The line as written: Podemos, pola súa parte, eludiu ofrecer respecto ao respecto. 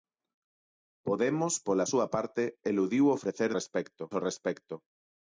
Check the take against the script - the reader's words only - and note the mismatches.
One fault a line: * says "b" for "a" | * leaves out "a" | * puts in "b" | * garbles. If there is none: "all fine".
all fine